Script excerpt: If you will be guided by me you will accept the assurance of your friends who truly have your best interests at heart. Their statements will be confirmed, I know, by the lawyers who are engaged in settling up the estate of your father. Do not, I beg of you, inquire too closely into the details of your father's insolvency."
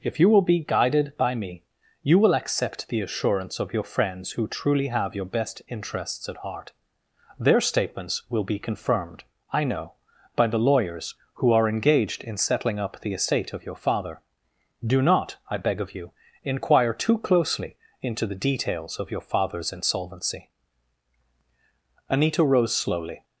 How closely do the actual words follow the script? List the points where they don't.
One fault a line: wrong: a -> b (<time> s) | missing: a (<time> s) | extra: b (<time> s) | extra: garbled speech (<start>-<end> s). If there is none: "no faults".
extra: Anita rose slowly (22.1 s)